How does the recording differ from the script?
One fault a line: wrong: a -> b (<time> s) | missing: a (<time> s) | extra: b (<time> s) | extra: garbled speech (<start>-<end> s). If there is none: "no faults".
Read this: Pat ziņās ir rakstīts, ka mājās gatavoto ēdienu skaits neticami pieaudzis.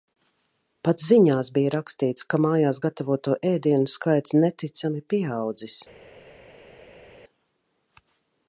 wrong: ir -> bija (1.6 s)